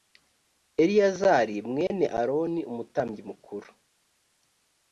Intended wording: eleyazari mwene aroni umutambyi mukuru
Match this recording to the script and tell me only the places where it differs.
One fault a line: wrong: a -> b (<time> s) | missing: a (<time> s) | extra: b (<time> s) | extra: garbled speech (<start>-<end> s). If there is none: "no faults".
no faults